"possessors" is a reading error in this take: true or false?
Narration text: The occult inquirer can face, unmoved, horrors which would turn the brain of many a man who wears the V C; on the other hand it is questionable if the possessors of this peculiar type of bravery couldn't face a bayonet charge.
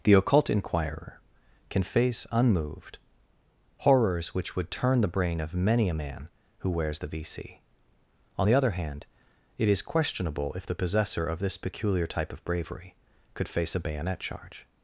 true